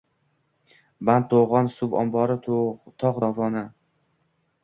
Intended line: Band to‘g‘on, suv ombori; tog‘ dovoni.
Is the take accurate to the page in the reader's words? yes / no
yes